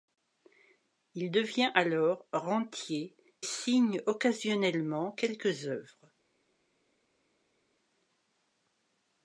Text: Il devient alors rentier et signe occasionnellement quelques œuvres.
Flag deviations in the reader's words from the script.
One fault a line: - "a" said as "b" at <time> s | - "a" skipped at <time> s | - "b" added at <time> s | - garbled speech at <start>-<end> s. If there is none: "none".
- "et" skipped at 3.2 s